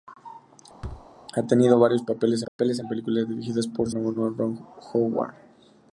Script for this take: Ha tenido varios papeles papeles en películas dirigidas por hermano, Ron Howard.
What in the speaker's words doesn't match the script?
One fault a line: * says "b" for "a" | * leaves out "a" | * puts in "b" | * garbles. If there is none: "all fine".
all fine